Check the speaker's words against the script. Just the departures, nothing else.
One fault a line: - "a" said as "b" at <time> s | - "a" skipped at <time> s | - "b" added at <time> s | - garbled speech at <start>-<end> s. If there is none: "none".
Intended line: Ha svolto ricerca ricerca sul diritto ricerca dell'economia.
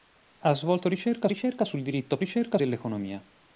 none